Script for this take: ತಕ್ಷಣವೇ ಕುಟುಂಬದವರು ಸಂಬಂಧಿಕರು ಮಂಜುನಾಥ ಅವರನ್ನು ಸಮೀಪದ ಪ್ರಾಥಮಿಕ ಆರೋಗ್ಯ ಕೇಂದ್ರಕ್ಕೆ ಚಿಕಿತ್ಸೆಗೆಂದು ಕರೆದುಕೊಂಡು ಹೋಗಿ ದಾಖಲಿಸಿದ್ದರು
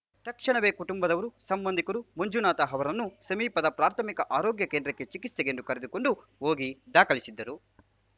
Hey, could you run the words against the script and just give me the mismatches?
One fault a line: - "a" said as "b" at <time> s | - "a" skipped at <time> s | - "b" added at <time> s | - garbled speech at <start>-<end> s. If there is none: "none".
none